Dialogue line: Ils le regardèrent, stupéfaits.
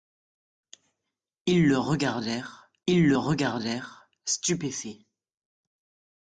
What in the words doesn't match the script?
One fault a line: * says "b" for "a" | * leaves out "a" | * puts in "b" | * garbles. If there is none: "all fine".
* puts in "ils le regardèrent"